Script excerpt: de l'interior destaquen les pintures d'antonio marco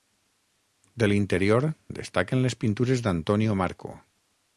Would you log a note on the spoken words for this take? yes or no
no